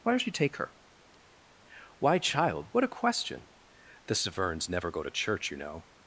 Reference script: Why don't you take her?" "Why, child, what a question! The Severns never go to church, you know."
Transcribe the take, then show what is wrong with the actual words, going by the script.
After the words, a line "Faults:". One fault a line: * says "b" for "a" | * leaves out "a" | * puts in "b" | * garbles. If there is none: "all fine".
Why don't you take her?" "Why, child, what a question! The Severns never go to church, you know."
Faults:
all fine